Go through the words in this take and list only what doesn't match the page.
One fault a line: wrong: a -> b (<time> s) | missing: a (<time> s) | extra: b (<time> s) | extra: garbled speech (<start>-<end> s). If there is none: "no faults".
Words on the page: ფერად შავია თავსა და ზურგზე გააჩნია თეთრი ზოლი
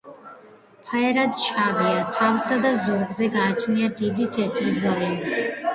extra: დიდი (4.1 s)